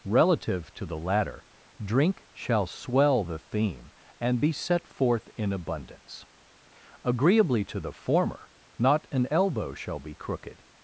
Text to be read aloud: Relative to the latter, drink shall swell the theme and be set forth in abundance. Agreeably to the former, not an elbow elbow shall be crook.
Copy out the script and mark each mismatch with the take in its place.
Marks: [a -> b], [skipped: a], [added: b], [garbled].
Relative to the latter, drink shall swell the theme and be set forth in abundance. Agreeably to the former, not an elbow [skipped: elbow] shall be [crook. -> crooked]